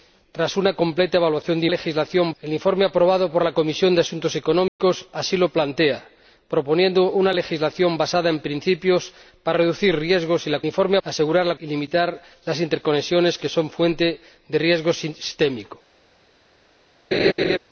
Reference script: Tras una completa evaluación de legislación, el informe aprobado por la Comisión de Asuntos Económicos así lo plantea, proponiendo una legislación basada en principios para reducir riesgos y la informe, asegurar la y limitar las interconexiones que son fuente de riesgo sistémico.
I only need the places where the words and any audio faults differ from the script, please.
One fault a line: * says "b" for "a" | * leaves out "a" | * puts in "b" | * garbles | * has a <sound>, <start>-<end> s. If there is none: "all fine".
* has a dropout, 4.7-4.8 s
* has a laugh, 17.1-17.6 s